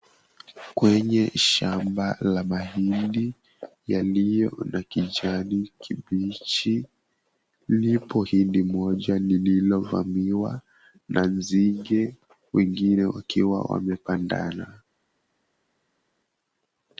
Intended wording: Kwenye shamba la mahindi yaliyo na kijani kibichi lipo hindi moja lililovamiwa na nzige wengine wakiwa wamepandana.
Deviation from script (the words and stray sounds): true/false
false